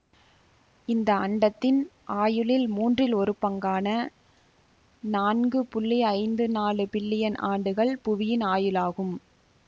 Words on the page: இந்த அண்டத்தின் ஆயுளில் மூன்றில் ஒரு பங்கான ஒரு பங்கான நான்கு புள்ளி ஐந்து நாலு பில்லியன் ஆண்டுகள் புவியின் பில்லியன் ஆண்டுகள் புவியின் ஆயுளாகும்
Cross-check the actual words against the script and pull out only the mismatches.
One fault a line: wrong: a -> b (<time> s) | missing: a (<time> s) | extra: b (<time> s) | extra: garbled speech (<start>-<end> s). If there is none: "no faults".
missing: ஒரு பங்கான (3.9 s)
missing: பில்லியன் ஆண்டுகள் புவியின் (8.5 s)